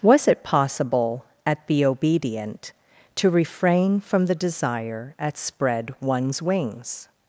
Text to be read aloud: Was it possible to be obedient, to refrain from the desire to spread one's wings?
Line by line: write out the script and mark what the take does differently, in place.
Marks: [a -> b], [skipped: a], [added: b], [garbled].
Was it possible [to -> at] be obedient, to refrain from the desire [to -> at] spread one's wings?